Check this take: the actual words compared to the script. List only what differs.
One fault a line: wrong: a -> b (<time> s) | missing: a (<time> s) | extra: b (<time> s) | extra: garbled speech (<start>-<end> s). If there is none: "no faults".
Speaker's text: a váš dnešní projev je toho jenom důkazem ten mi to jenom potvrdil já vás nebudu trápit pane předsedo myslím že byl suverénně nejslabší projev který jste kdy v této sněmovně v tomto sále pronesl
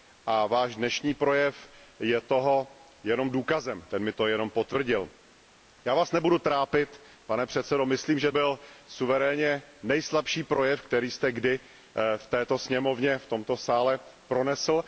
no faults